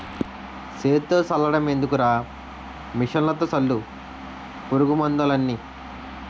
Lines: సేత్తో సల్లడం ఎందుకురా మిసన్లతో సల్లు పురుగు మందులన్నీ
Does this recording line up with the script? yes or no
yes